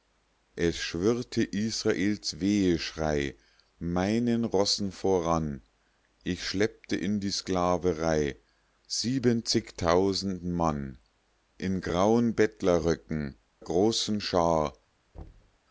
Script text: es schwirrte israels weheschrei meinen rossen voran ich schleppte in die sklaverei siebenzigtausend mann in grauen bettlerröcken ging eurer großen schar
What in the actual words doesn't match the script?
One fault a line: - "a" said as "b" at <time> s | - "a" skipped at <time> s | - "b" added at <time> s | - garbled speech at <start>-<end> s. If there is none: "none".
- "ging eurer" skipped at 13.4 s